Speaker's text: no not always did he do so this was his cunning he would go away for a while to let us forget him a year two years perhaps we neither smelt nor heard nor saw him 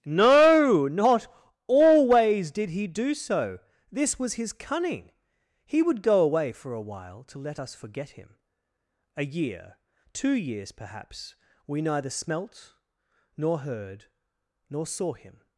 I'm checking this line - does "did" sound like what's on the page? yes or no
yes